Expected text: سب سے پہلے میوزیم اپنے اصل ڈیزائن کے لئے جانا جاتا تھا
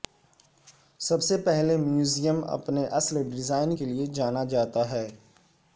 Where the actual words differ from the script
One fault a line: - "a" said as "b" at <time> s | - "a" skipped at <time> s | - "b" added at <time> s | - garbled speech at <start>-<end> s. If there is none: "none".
- "تھا" said as "ہے" at 4.9 s